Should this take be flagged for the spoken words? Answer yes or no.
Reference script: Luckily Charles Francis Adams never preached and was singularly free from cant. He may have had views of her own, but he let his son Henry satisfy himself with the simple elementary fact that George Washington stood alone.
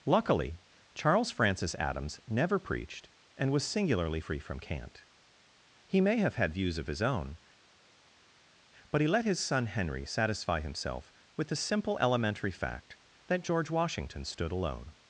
yes